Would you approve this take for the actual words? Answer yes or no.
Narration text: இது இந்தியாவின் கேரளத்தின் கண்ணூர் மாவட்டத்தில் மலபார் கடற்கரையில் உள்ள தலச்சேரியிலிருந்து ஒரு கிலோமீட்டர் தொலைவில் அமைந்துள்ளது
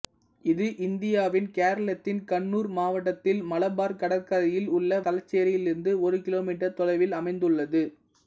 yes